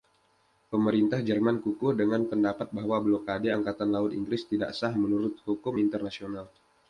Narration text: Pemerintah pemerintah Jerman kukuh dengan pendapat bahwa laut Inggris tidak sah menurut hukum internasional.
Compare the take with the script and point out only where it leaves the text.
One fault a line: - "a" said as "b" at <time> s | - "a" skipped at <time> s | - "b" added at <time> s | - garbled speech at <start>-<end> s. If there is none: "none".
- "pemerintah" skipped at 1.2 s
- "blokade angkatan" added at 3.0 s